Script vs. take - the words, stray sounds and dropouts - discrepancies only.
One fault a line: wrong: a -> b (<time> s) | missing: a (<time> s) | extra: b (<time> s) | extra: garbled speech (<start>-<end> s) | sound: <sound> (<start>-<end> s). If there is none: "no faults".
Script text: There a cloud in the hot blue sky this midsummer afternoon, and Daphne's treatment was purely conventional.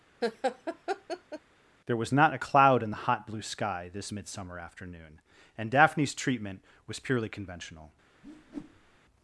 sound: laugh (0.2-1.4 s)
extra: was not (2.0 s)
sound: whoosh (8.2-9.0 s)